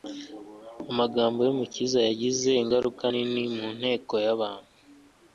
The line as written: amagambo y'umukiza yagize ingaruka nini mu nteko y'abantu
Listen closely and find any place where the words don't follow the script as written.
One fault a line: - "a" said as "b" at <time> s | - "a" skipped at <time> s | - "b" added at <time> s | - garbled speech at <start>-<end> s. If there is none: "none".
none